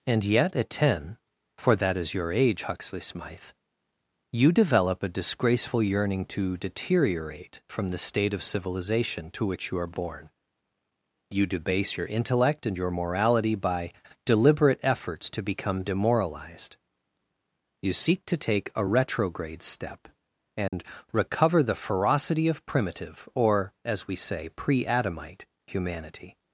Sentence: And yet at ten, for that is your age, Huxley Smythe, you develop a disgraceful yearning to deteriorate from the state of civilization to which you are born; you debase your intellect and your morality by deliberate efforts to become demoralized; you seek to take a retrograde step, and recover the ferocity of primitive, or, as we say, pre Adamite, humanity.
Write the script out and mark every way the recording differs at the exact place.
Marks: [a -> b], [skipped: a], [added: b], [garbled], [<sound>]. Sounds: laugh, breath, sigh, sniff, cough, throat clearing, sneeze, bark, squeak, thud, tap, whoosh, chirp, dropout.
And yet at ten, for that is your age, Huxley Smythe, you develop a disgraceful yearning to deteriorate from the state of civilization to which you are born; you debase your intellect and your morality by deliberate efforts to become demoralized; you seek to take a retrograde step, and [dropout] recover the ferocity of primitive, or, as we say, pre Adamite, humanity.